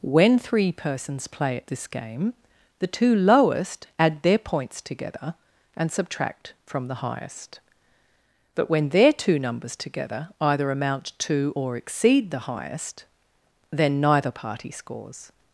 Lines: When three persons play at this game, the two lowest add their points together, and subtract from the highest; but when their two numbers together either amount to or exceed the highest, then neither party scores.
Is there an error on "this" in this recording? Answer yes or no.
no